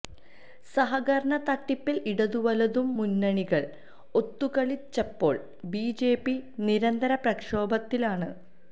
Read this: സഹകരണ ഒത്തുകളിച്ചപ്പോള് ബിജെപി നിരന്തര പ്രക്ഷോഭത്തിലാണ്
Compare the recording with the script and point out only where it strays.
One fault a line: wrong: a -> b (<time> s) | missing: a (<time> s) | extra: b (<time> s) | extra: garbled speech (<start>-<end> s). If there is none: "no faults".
extra: തട്ടിപ്പില് ഇടതുവലതു മുന്നണികള് (1.5 s)